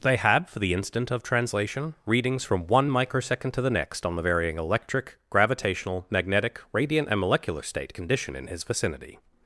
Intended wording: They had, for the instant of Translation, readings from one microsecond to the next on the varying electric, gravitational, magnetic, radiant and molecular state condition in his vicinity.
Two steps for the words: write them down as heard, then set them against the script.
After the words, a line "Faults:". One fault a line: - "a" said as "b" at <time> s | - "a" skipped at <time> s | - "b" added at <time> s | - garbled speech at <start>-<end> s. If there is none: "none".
They had, for the instant of Translation, readings from one microsecond to the next on the varying electric, gravitational, magnetic, radiant and molecular state condition in his vicinity.
Faults:
none